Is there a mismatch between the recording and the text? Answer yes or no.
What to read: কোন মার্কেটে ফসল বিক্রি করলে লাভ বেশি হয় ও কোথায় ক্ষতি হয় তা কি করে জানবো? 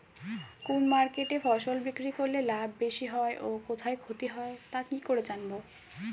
no